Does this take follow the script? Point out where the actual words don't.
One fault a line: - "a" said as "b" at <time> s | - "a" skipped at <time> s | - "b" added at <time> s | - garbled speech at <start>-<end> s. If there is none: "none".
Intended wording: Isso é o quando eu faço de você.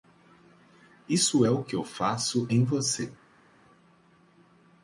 - "quando" said as "que" at 1.6 s
- "de" said as "em" at 2.5 s